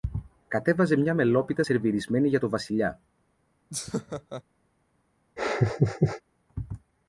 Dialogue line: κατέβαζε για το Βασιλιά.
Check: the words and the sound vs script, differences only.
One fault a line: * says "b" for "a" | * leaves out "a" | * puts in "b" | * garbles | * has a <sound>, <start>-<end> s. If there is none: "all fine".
* puts in "μια μελόπιτα σερβιρισμένη"
* has a laugh, 3.7-4.4 s
* has a laugh, 5.4-6.2 s